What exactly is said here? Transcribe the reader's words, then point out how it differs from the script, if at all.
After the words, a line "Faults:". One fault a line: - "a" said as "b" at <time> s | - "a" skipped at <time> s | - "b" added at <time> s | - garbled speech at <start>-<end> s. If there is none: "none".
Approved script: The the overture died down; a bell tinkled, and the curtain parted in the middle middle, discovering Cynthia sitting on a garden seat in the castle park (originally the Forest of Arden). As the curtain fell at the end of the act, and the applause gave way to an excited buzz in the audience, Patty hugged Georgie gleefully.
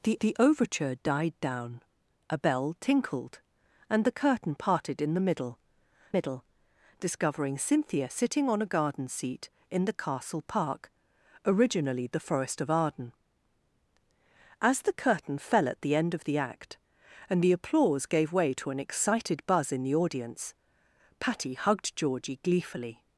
The the overture died down; a bell tinkled, and the curtain parted in the middle middle, discovering Cynthia sitting on a garden seat in the castle park (originally the Forest of Arden). As the curtain fell at the end of the act, and the applause gave way to an excited buzz in the audience, Patty hugged Georgie gleefully.
Faults:
none